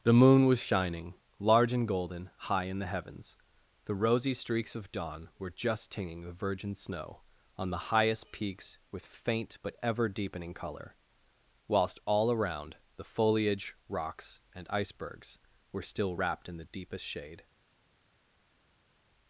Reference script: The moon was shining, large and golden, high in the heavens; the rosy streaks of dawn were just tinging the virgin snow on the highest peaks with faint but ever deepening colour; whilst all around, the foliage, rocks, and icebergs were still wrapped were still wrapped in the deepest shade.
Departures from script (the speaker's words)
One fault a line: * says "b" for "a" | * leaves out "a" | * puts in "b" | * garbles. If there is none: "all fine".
* leaves out "were still wrapped"